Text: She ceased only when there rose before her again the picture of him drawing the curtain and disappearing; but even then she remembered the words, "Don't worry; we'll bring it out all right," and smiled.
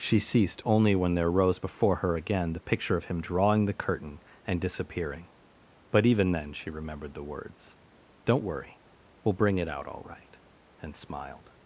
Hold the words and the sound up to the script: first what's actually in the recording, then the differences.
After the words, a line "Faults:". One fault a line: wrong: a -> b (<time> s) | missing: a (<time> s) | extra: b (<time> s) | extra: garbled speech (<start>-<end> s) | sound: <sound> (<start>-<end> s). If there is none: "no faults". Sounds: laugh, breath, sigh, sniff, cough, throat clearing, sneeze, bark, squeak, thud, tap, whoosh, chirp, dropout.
She ceased only when there rose before her again the picture of him drawing the curtain and disappearing; but even then she remembered the words, "Don't worry; we'll bring it out all right," and smiled.
Faults:
no faults